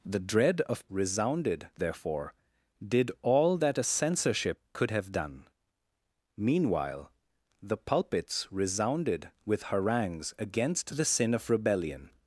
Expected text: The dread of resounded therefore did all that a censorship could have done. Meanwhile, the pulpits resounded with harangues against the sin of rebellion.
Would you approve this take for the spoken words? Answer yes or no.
yes